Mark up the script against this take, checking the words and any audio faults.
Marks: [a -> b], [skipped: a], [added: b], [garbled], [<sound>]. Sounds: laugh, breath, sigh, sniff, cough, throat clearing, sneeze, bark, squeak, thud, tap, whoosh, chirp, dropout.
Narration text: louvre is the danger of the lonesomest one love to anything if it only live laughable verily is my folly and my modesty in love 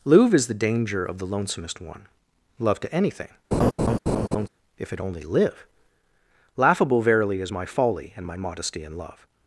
louvre is the danger of the lonesomest one love to anything [laugh] if it only live laughable verily is my folly and my modesty in love